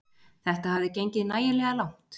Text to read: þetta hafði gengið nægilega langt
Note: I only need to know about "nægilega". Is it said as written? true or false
true